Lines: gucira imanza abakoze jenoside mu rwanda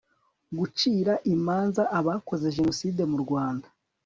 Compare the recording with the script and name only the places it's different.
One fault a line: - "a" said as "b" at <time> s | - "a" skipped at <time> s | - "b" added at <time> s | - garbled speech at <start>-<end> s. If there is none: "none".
none